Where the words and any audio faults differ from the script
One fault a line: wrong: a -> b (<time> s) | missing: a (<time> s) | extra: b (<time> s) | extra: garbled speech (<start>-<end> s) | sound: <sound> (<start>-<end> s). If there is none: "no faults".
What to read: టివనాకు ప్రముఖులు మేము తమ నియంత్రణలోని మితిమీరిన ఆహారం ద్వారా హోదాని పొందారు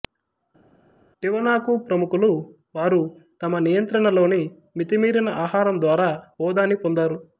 wrong: మేము -> వారు (2.8 s)